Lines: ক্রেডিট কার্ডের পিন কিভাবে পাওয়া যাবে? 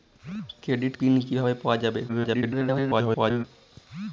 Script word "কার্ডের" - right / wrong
wrong